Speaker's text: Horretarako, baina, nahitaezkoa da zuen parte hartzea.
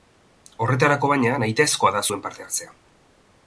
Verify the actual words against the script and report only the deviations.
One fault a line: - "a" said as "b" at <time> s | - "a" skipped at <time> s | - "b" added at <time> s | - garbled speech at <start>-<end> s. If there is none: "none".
none